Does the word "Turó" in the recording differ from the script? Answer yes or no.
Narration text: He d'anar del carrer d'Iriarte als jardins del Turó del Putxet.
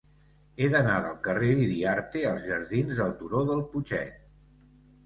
no